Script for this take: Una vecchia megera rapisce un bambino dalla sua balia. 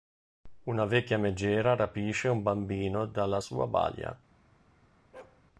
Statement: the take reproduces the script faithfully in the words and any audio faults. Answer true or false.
false